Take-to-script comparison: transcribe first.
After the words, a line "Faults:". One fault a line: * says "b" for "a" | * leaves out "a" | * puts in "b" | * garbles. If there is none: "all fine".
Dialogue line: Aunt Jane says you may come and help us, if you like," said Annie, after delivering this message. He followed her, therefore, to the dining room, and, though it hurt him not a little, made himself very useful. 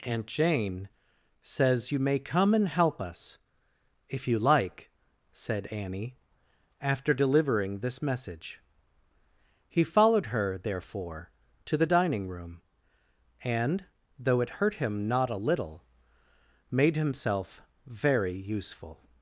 Aunt Jane says you may come and help us, if you like," said Annie, after delivering this message. He followed her, therefore, to the dining room, and, though it hurt him not a little, made himself very useful.
Faults:
all fine